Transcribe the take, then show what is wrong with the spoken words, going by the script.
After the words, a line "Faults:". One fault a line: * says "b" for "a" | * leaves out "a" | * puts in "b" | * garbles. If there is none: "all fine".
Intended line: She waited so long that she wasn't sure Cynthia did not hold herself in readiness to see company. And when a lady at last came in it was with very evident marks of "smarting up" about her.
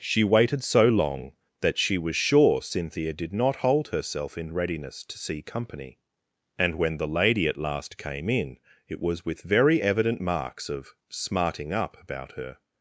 She waited so long that she was sure Cynthia did not hold herself in readiness to see company. And when the lady at last came in it was with very evident marks of "smarting up" about her.
Faults:
* says "was" for "wasn't"
* says "the" for "a"